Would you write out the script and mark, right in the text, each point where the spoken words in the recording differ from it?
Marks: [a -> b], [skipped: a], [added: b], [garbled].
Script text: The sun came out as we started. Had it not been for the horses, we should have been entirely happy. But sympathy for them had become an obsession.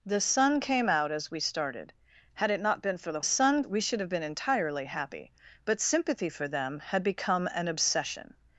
The sun came out as we started. Had it not been for the [horses, -> sun] we should have been entirely happy. But sympathy for them had become an obsession.